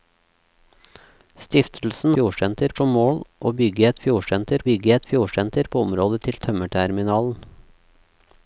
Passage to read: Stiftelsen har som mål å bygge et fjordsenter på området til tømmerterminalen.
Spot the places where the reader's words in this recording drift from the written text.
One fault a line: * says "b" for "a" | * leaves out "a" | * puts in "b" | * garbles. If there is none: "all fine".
* says "fjordsenter" for "har"
* puts in "bygge et fjordsenter"